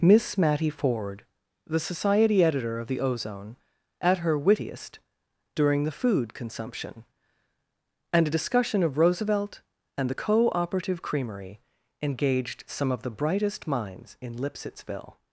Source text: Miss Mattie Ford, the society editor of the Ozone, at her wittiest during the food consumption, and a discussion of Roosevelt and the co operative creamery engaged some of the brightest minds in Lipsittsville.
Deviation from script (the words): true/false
false